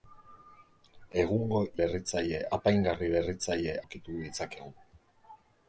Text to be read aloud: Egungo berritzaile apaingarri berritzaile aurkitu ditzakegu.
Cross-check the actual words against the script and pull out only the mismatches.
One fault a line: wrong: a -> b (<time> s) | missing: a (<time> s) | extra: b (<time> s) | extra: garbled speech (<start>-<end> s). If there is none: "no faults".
no faults